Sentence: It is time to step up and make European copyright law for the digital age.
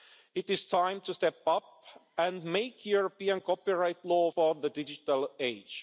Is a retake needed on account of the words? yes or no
no